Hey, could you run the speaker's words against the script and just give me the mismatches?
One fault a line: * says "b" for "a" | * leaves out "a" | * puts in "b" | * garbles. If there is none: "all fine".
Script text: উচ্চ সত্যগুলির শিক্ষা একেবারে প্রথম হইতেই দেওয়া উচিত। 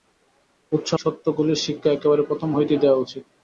all fine